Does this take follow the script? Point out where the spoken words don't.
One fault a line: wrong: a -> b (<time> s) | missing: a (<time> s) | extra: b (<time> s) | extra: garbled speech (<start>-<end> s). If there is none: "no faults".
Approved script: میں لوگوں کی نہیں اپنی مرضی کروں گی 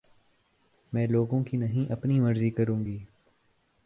no faults